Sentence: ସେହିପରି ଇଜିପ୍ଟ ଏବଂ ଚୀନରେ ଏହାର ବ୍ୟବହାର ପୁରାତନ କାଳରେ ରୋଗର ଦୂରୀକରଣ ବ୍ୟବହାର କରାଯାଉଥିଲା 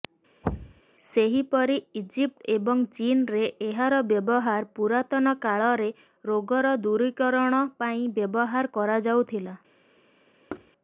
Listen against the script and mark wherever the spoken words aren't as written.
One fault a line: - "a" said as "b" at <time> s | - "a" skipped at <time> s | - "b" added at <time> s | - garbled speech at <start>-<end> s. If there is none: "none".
- "ପାଇଁ" added at 7.8 s